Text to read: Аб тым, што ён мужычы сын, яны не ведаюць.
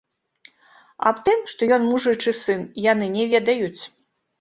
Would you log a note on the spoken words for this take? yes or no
no